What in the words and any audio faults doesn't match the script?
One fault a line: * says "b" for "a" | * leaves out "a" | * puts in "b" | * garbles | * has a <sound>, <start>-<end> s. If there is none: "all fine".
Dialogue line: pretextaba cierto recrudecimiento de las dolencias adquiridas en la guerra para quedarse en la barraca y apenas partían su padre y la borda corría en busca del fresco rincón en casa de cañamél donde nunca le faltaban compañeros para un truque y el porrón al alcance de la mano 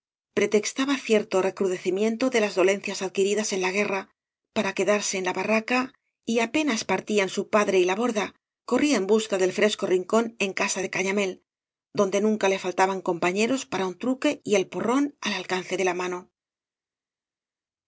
all fine